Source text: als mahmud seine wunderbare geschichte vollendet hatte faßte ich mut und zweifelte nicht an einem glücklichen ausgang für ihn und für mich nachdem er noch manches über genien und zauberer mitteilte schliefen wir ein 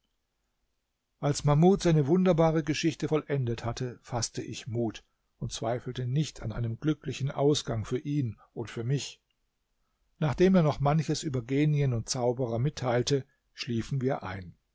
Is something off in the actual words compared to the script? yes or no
no